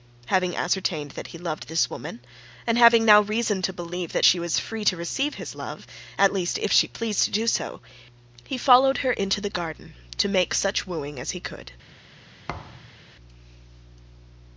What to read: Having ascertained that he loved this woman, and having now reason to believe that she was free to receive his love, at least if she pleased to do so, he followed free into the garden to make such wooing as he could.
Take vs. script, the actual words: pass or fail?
fail